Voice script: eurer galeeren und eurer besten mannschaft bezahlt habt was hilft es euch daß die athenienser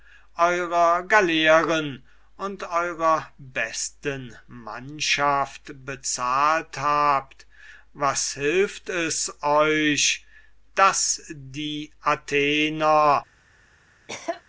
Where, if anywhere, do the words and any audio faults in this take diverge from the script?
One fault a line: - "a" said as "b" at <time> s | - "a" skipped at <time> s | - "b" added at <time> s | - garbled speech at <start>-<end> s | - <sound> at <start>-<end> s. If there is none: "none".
- cough at 14.1-14.4 s